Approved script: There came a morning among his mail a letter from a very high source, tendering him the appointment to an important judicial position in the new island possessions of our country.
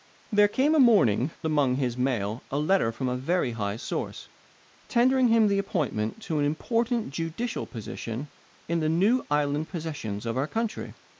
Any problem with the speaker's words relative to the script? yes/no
no